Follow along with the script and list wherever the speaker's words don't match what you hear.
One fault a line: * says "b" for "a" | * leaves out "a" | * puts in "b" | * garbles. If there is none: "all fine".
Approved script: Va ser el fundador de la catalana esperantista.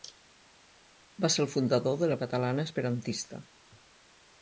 all fine